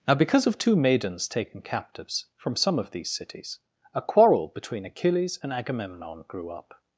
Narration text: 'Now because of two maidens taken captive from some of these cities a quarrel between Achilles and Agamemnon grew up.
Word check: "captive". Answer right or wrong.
wrong